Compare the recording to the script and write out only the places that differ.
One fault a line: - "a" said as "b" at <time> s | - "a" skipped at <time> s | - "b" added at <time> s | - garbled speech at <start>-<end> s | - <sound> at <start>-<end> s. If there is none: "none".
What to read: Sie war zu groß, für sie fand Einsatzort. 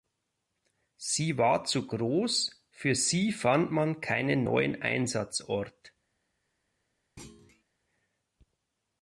- "man keinen neuen" added at 3.7 s
- thud at 7.2-7.6 s